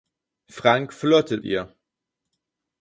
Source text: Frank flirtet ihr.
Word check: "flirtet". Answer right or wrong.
right